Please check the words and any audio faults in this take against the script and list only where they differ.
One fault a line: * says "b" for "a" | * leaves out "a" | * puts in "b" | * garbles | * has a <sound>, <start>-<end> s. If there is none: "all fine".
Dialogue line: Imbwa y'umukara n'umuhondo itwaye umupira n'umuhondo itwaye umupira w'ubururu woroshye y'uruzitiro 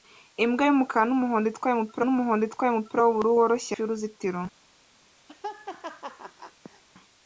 * has a laugh, 5.3-6.8 s